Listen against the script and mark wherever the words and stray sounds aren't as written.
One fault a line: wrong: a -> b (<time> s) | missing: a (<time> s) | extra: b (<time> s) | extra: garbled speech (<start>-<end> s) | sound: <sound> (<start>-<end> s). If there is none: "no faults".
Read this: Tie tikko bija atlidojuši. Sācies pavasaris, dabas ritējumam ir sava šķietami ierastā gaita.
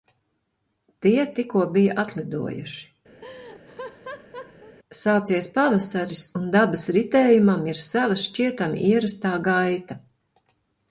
sound: laugh (3.2-4.8 s)
extra: un (6.4 s)